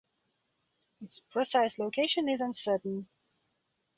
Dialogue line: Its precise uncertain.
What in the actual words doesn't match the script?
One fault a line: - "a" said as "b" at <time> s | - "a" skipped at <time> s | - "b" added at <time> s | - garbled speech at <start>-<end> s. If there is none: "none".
- "location is" added at 1.8 s